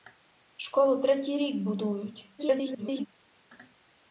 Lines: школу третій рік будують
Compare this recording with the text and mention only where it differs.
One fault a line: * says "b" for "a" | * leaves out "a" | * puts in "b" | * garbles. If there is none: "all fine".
* garbles